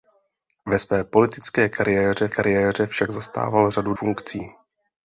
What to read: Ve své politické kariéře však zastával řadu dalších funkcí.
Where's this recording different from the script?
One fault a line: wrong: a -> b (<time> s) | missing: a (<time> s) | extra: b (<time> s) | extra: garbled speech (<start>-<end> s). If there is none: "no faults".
extra: kariéře (2.3 s)
missing: dalších (3.9 s)